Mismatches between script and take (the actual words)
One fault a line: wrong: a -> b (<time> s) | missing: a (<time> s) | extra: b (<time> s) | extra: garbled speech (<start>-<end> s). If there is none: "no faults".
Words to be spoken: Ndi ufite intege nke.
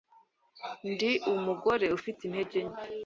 extra: umugore (1.3 s)